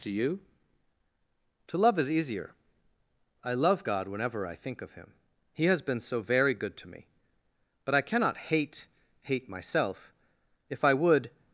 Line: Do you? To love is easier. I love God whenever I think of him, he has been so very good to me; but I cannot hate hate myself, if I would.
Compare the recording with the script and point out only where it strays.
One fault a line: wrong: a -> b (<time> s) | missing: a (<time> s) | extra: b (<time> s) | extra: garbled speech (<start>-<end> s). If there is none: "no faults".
no faults